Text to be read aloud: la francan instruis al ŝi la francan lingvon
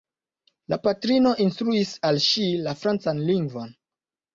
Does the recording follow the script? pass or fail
fail